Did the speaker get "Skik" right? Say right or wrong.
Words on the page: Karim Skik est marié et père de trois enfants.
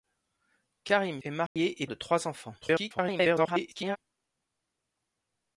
wrong